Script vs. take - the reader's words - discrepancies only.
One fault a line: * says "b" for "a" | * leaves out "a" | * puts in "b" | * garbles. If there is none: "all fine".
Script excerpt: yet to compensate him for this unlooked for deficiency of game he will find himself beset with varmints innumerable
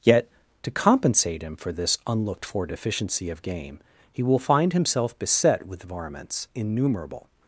all fine